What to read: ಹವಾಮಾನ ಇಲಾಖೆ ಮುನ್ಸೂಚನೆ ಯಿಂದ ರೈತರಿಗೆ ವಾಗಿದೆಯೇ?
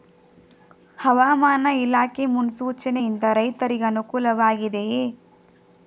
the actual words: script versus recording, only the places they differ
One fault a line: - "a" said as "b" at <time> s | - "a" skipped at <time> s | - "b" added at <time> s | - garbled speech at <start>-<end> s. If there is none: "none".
- "ಅನುಕೂಲ" added at 3.9 s